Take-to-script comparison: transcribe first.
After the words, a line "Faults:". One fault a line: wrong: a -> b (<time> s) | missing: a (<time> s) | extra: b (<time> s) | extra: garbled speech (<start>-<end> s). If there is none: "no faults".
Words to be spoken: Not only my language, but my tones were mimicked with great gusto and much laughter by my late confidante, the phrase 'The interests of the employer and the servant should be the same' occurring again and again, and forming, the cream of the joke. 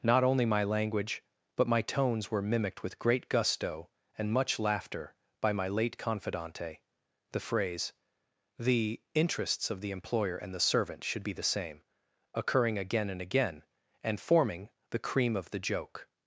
Not only my language, but my tones were mimicked with great gusto and much laughter by my late confidante, the phrase 'The interests of the employer and the servant should be the same' occurring again and again, and forming, the cream of the joke.
Faults:
no faults